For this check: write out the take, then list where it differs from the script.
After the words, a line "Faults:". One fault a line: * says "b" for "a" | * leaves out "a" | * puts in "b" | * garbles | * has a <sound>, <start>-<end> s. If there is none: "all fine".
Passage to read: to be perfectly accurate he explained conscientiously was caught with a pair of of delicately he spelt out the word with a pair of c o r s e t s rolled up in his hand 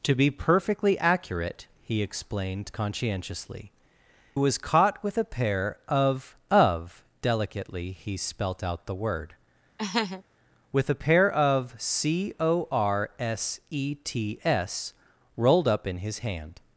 to be perfectly accurate he explained conscientiously was caught with a pair of of delicately he spelt out the word with a pair of c o r s e t s rolled up in his hand
Faults:
* has a laugh, 9.8-10.2 s